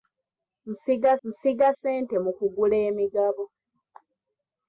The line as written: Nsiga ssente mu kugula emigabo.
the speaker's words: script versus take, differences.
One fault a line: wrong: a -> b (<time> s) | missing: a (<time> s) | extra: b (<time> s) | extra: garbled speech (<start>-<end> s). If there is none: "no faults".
extra: nsiga (1.3 s)